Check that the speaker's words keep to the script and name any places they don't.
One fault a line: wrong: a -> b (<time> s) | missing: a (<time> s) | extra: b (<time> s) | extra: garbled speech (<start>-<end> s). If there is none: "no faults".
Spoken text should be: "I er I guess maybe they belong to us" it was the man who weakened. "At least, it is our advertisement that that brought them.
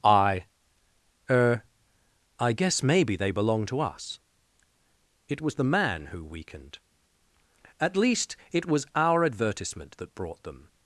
wrong: is -> was (8.6 s)
missing: that (10.1 s)